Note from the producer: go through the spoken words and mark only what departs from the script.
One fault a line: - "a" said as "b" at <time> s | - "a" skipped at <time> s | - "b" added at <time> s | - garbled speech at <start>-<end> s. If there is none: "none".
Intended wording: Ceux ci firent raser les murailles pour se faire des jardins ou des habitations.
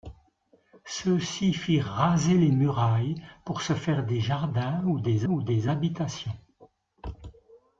- "ou des" added at 5.3 s